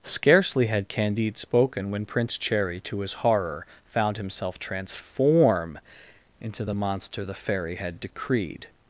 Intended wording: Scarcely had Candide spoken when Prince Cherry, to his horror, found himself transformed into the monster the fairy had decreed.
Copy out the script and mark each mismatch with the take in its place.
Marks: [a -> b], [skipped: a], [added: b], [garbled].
Scarcely had Candide spoken when Prince Cherry, to his horror, found himself [transformed -> transform] into the monster the fairy had decreed.